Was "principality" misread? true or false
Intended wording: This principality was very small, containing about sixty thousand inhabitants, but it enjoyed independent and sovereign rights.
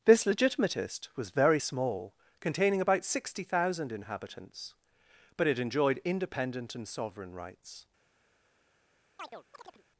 true